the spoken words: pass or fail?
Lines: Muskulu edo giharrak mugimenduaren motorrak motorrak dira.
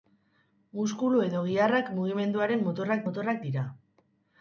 pass